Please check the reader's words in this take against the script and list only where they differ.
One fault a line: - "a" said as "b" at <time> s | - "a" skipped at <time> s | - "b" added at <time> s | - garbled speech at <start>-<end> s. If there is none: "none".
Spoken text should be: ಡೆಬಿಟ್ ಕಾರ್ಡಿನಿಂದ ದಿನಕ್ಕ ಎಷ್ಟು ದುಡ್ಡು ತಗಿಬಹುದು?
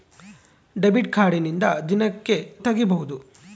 - "ದಿನಕ್ಕ ಎಷ್ಟು ದುಡ್ಡು" skipped at 1.6 s